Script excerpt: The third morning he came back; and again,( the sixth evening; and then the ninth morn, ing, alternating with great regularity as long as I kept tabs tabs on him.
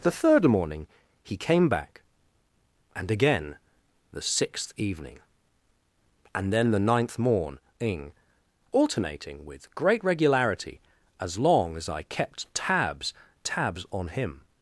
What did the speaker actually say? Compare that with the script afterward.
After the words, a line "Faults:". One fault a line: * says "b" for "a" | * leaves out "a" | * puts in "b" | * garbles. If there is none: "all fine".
The third morning he came back; and again,( the sixth evening; and then the ninth morn, ing, alternating with great regularity as long as I kept tabs tabs on him.
Faults:
all fine